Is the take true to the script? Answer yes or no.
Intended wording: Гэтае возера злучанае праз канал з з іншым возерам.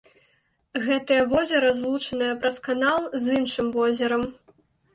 no